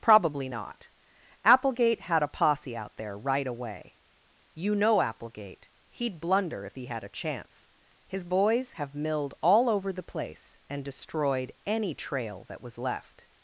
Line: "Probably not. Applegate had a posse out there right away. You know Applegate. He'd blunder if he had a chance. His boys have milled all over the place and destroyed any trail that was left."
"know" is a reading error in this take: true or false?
false